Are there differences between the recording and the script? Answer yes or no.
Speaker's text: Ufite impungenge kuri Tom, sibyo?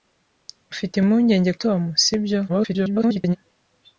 yes